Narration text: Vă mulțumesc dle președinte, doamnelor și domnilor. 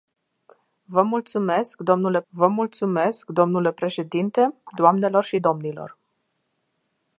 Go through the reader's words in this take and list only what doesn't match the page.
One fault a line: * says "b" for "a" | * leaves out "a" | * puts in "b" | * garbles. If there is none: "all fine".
* puts in "vă mulțumesc dle"